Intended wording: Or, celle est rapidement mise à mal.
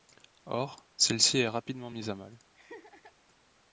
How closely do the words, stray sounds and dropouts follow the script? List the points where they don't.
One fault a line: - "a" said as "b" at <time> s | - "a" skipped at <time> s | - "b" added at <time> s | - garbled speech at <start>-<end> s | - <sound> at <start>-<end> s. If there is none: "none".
- "ci" added at 1.2 s
- laugh at 2.5-3.1 s